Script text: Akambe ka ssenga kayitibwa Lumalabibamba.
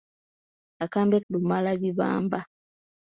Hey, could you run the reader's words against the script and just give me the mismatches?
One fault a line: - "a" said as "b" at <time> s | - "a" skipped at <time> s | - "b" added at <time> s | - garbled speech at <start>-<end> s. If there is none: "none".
- "ka ssenga kayitibwa" skipped at 1.2 s